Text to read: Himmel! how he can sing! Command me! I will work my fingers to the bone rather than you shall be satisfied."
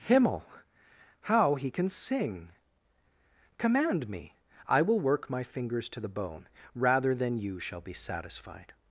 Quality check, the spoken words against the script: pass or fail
pass